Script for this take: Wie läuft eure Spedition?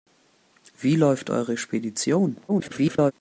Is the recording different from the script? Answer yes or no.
yes